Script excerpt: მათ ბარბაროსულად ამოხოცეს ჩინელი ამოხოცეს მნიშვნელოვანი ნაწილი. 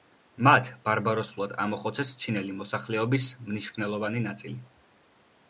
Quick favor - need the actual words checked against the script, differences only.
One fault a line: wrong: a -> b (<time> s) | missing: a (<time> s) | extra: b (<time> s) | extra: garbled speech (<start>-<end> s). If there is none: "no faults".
wrong: ამოხოცეს -> მოსახლეობის (2.6 s)